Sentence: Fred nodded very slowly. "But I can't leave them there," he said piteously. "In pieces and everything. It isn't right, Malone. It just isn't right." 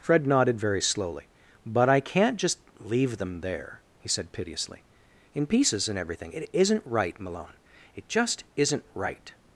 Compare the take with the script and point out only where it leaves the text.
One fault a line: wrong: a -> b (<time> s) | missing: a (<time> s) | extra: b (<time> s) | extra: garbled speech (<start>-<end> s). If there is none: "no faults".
extra: just (2.4 s)